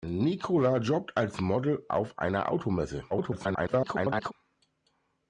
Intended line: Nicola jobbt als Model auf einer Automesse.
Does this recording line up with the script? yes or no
no